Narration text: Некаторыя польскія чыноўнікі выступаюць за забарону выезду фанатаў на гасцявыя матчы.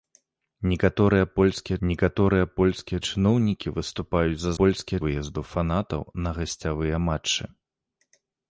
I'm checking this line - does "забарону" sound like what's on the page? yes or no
no